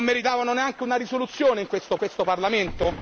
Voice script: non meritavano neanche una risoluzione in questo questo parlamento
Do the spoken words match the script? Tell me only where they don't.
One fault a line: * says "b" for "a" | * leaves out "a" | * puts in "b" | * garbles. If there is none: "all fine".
all fine